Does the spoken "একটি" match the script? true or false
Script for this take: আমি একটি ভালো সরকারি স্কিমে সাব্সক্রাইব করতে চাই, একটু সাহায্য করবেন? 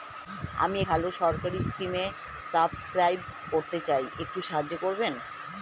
false